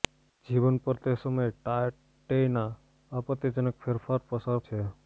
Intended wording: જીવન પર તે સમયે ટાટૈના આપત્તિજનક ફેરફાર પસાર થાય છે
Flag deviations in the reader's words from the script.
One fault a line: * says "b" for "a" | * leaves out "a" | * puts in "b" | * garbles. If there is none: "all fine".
* leaves out "થાય"